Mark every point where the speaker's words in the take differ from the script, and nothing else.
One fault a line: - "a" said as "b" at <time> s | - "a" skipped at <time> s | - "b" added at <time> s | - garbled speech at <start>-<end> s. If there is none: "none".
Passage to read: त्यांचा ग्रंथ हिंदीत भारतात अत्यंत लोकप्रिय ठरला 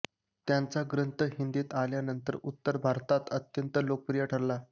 - "आल्यानंतर उत्तर" added at 1.7 s